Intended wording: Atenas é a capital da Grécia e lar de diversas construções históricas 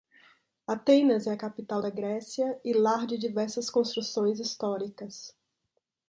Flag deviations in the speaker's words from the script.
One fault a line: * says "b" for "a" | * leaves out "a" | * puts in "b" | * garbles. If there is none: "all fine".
all fine